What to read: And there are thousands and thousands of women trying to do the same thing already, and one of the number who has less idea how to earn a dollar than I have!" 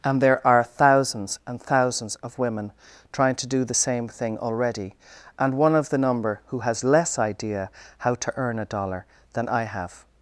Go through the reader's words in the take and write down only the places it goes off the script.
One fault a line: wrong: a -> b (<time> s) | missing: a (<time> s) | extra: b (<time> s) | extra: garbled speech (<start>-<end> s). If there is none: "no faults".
no faults